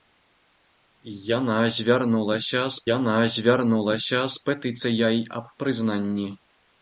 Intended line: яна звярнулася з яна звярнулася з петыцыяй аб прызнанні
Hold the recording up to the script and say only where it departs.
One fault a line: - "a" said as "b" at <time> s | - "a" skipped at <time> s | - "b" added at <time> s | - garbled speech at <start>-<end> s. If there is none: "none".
none